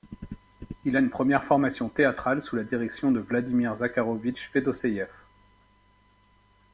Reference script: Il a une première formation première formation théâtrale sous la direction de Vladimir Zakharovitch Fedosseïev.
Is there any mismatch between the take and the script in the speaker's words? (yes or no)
yes